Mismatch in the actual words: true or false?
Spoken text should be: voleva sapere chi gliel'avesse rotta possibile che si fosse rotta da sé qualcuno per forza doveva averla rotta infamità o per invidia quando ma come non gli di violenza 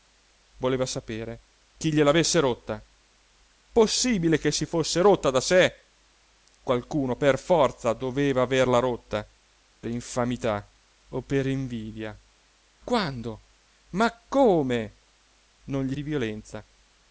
false